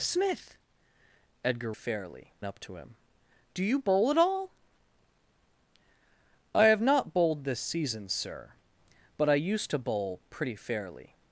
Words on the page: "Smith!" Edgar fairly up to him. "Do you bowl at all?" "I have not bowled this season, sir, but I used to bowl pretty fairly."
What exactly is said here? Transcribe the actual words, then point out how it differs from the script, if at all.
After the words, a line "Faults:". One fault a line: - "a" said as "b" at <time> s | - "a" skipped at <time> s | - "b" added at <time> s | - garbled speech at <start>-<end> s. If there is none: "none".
"Smith!" Edgar fairly up to him. "Do you bowl at all?" "I have not bowled this season, sir, but I used to bowl pretty fairly."
Faults:
none